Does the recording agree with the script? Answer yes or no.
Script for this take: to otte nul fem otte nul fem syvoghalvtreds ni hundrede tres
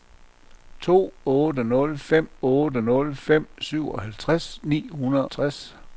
yes